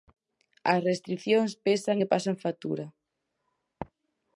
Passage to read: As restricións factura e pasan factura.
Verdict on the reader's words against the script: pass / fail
fail